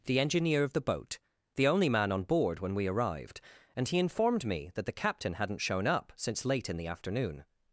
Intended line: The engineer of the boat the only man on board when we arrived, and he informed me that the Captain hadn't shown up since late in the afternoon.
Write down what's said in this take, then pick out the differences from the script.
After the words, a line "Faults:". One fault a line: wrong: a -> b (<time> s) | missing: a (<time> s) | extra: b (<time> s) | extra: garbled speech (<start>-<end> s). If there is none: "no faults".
The engineer of the boat the only man on board when we arrived, and he informed me that the Captain hadn't shown up since late in the afternoon.
Faults:
no faults